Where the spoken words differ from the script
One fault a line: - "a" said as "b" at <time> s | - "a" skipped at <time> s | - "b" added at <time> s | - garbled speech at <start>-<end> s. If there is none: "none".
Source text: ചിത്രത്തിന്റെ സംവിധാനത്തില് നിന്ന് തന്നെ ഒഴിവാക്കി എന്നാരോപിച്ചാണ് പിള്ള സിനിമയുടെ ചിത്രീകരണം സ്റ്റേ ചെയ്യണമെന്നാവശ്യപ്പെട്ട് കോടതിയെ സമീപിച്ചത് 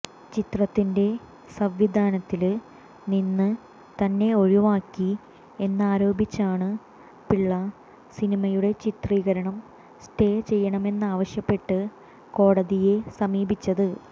none